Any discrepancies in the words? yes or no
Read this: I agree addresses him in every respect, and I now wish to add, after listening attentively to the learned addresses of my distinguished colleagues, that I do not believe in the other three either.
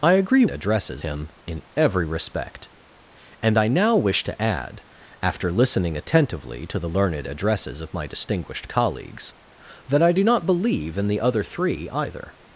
no